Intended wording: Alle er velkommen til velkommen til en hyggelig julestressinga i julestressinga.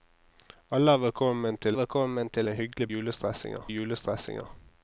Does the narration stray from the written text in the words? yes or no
no